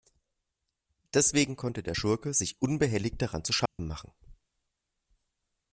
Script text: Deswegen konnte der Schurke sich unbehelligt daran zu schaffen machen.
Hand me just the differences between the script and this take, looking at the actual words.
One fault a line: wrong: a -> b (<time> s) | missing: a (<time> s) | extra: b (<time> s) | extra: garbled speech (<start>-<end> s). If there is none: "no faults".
no faults